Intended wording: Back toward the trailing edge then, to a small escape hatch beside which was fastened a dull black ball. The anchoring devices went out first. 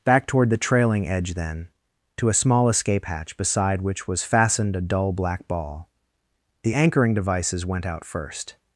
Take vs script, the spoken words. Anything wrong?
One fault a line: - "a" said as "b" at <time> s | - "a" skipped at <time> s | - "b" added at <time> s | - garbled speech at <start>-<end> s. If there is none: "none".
none